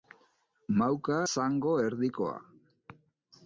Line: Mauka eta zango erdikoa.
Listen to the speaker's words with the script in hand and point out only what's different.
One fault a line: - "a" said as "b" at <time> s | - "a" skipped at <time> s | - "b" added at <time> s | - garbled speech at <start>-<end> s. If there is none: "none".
- "eta" skipped at 1.2 s